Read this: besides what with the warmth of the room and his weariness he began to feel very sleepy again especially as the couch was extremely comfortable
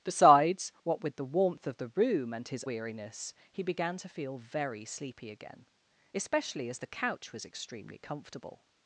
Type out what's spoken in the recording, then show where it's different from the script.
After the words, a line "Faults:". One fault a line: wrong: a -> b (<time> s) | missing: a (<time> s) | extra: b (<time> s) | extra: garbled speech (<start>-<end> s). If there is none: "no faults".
besides what with the warmth of the room and his weariness he began to feel very sleepy again especially as the couch was extremely comfortable
Faults:
no faults